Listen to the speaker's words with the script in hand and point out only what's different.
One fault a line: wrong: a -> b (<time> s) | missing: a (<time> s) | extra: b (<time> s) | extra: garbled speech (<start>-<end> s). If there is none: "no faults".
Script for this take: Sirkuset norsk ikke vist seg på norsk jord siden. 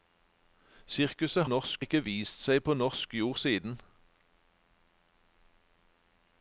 no faults